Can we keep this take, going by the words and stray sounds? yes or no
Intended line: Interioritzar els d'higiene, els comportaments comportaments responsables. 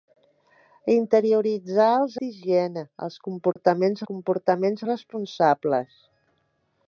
no